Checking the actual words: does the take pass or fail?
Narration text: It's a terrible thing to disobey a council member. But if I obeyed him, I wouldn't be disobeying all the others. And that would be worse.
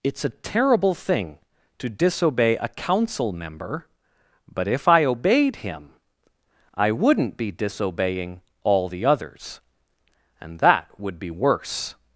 pass